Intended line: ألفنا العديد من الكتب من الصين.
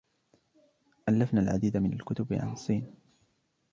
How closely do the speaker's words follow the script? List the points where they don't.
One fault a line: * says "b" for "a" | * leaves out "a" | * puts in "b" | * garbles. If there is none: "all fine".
* says "عن" for "من"